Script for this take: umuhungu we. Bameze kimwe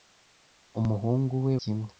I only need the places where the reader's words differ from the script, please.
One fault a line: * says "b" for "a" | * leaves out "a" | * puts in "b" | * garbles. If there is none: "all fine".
* leaves out "Bameze"